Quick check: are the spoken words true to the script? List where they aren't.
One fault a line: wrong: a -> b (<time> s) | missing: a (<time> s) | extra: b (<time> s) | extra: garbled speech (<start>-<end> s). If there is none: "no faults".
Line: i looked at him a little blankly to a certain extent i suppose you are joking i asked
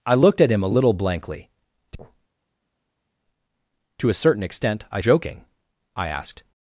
missing: suppose you are (5.0 s)